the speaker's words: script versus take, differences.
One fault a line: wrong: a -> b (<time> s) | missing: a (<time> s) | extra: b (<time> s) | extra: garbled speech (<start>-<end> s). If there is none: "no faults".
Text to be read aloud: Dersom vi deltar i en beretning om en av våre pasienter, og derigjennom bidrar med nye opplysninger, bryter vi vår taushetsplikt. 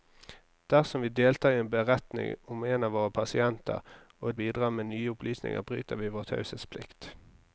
missing: derigjennom (4.3 s)